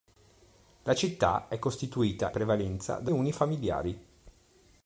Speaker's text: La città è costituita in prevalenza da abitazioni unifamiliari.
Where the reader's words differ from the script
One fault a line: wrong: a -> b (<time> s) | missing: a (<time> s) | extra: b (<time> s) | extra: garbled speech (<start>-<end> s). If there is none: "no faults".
missing: in (2.3 s)
missing: abitazioni (3.1 s)